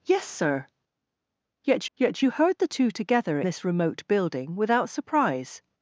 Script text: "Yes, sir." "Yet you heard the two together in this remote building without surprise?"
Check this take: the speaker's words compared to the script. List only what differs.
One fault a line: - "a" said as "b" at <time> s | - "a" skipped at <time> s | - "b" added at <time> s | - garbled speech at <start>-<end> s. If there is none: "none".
- "yet" added at 2.0 s
- "in" skipped at 3.4 s